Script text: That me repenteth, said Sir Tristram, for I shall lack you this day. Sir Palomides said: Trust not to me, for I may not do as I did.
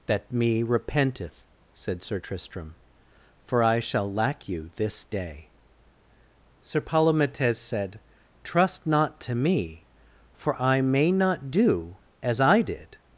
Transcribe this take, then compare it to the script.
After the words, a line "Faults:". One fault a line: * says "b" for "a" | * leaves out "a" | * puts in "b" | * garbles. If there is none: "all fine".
That me repenteth, said Sir Tristram, for I shall lack you this day. Sir Palomides said: Trust not to me, for I may not do as I did.
Faults:
all fine